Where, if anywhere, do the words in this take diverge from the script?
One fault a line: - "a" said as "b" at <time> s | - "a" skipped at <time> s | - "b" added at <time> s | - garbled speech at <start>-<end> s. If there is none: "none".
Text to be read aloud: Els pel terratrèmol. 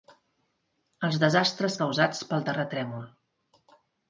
- "desastres causats" added at 1.2 s